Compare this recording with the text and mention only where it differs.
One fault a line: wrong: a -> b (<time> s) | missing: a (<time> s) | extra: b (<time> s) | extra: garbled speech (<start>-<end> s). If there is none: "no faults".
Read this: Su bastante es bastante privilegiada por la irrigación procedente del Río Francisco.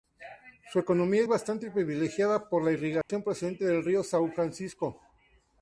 wrong: bastante -> economía (0.8 s)
extra: São (4.0 s)